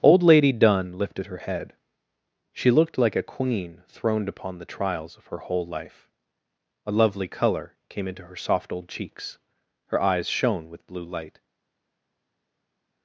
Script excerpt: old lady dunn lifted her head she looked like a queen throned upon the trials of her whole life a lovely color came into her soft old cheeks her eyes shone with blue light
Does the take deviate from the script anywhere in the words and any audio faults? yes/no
no